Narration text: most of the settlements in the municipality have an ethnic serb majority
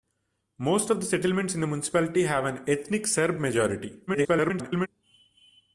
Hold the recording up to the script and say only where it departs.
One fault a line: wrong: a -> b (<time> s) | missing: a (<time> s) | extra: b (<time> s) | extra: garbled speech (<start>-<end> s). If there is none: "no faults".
extra: garbled speech (4.1-4.9 s)